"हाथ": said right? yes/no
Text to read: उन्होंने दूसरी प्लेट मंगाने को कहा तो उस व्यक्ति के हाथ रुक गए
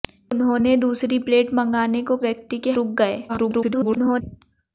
no